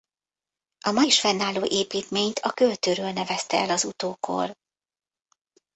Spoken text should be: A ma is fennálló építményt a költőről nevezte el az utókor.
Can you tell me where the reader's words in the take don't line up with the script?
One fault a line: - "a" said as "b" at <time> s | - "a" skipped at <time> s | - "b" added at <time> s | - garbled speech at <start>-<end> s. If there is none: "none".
none